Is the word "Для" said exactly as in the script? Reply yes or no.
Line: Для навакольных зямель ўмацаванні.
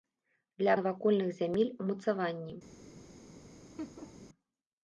yes